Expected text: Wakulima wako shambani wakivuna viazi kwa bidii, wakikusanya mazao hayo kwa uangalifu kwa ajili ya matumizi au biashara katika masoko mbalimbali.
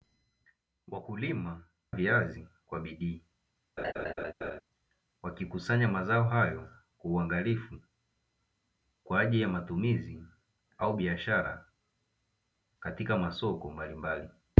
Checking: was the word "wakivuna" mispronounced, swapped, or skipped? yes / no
yes